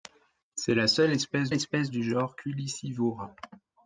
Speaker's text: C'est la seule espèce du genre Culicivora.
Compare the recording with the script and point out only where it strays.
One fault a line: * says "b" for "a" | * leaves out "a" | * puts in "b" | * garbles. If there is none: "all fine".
* puts in "espèce"